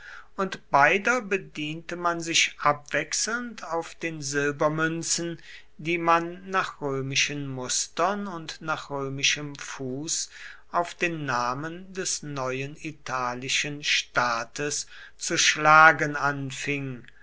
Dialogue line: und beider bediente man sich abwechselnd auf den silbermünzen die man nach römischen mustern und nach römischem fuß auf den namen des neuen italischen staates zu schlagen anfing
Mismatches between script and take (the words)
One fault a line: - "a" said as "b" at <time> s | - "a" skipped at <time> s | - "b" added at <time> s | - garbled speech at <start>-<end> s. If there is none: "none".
none